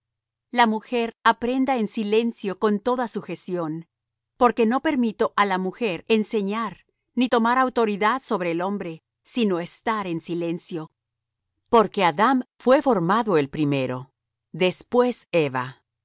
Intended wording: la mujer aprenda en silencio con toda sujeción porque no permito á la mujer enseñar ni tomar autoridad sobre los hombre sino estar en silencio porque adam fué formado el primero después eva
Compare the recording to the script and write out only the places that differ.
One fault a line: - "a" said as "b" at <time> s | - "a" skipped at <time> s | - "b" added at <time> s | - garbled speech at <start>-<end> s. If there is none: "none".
- "los" said as "el" at 8.5 s